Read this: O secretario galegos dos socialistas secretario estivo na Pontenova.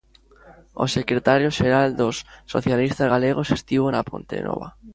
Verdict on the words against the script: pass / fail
fail